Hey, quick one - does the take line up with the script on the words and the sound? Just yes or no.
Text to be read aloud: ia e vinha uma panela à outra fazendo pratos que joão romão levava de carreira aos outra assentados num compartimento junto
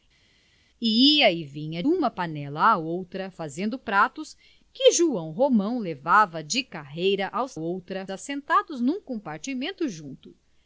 yes